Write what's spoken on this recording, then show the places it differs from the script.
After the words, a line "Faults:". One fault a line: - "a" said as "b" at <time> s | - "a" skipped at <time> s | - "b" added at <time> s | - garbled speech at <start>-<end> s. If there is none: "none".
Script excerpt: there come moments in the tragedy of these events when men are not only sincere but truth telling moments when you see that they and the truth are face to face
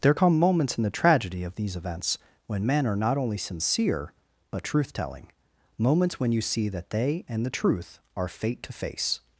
there come moments in the tragedy of these events when men are not only sincere but truth telling moments when you see that they and the truth are fate to face
Faults:
- "face" said as "fate" at 8.3 s